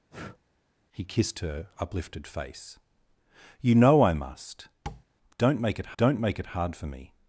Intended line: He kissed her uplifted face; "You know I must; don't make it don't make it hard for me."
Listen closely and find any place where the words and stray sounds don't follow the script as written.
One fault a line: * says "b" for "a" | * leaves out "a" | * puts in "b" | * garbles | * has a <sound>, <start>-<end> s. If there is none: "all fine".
* has a breath, 0.1-0.4 s
* has a tap, 4.9-5.0 s